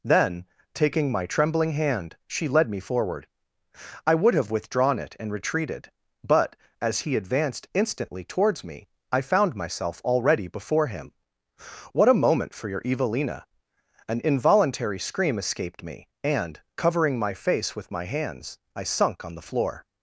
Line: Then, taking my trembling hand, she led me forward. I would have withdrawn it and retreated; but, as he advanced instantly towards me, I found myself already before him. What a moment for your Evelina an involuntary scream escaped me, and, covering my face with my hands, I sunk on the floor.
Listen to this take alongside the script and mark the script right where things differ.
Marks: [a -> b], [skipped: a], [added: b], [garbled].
Then, taking my trembling hand, she led me forward. I would have withdrawn it and retreated; but, as he advanced instantly towards me, I found myself already before him. What a moment for your Evelina an involuntary scream escaped me, and, covering my face with my hands, I sunk on the floor.